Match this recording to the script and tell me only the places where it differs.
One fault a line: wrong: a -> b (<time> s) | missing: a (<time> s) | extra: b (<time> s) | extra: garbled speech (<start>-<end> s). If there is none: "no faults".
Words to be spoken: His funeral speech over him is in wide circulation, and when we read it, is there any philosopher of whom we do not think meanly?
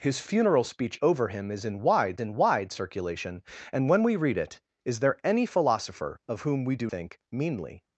extra: in wide (2.2 s)
missing: not (6.9 s)